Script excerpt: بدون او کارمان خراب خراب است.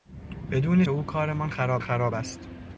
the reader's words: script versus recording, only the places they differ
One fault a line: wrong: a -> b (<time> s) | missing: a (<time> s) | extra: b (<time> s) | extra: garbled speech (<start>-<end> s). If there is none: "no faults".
no faults